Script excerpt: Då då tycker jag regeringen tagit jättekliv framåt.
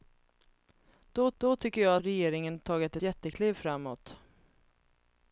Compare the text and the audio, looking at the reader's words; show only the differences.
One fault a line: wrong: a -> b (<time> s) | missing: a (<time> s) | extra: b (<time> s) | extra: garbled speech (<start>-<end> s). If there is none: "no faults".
no faults